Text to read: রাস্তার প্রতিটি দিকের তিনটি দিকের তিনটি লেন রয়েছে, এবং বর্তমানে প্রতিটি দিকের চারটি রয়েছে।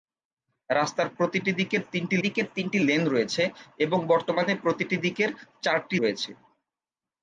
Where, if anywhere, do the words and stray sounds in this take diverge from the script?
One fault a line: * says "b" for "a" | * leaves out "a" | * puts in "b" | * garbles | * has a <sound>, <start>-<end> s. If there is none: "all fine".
all fine